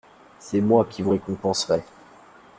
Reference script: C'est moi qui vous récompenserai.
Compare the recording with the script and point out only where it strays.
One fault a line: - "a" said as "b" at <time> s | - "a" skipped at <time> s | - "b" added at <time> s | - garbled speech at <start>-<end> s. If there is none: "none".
none